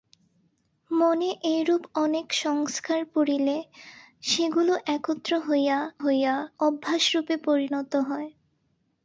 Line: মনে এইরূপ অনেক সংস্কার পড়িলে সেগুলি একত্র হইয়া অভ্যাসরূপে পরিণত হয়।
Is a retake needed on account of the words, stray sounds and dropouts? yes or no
yes